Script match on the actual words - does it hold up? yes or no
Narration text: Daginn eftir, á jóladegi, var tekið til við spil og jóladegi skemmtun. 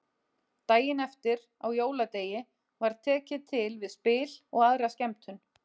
no